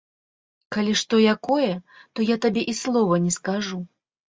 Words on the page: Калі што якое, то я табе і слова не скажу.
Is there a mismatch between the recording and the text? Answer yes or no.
no